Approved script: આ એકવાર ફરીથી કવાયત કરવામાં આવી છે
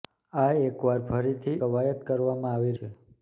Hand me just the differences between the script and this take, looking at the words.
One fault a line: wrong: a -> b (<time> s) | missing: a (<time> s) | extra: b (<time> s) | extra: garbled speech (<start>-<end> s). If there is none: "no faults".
no faults